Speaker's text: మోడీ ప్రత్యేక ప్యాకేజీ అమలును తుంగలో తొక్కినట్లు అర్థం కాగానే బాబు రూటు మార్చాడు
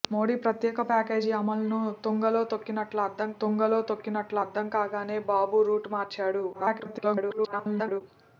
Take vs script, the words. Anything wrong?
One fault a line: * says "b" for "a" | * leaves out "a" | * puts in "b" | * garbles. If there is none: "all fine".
* puts in "తుంగలో తొక్కినట్లు అర్థం"
* garbles